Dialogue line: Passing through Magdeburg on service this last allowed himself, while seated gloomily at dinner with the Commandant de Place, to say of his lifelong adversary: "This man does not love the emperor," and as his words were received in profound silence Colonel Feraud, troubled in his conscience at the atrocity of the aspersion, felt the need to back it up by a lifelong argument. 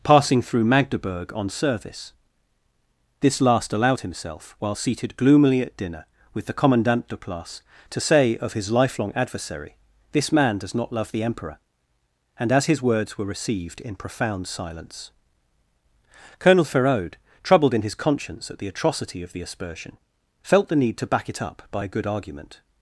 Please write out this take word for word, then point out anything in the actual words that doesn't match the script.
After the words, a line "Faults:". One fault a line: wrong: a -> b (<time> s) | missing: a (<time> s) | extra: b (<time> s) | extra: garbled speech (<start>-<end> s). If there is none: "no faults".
Passing through Magdeburg on service this last allowed himself, while seated gloomily at dinner with the Commandant de Place, to say of his lifelong adversary: "This man does not love the emperor," and as his words were received in profound silence Colonel Feraud, troubled in his conscience at the atrocity of the aspersion, felt the need to back it up by a good argument.
Faults:
wrong: lifelong -> good (21.9 s)